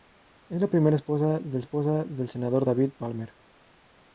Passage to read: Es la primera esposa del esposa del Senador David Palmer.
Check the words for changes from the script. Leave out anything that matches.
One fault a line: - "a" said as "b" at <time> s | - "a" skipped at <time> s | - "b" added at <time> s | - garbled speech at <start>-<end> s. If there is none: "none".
none